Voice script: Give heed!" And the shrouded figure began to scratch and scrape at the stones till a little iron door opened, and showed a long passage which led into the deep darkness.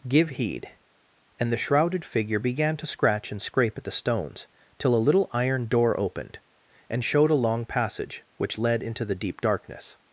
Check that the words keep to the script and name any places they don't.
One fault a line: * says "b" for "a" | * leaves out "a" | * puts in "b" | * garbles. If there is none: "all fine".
all fine